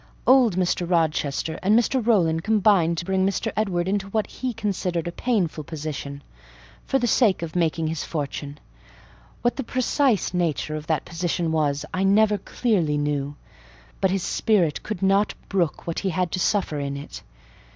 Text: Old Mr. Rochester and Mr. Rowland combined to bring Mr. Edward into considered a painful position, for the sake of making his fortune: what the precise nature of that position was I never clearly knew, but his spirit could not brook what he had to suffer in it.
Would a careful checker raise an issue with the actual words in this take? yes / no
yes